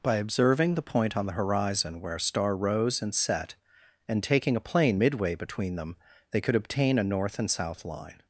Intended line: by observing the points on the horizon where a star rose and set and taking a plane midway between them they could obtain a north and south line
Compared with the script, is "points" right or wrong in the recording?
wrong